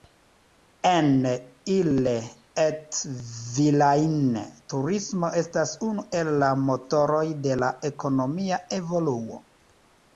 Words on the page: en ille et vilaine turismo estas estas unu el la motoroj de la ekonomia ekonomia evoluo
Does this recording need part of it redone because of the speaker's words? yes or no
yes